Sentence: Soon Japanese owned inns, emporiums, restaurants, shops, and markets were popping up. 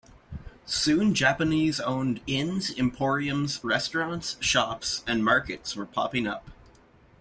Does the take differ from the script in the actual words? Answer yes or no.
no